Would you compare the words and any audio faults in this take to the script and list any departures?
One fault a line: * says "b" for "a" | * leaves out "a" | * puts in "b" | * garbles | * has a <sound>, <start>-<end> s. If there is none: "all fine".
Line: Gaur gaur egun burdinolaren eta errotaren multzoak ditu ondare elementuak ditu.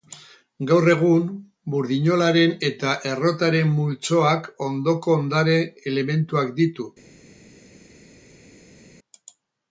* leaves out "gaur"
* says "ondoko" for "ditu"